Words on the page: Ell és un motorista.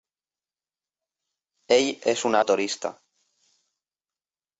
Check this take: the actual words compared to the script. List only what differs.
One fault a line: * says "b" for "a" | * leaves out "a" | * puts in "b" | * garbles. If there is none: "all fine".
all fine